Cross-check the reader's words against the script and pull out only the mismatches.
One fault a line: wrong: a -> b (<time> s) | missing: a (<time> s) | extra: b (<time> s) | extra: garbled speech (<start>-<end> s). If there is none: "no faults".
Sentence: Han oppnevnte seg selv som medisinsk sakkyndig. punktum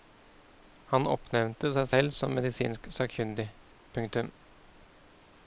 no faults